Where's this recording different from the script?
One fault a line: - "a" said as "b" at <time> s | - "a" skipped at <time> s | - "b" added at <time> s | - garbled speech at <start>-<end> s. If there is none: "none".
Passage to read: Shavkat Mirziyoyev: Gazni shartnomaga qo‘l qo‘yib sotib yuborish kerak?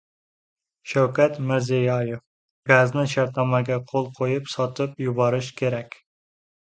none